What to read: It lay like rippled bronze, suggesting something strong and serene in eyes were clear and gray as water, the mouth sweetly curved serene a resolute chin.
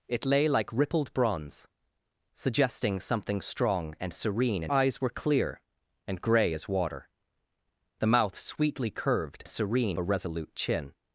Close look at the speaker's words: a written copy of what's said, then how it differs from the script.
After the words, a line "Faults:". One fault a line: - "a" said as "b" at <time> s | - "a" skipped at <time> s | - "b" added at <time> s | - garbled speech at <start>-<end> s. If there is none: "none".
It lay like rippled bronze, suggesting something strong and serene in eyes were clear and gray as water, the mouth sweetly curved serene a resolute chin.
Faults:
none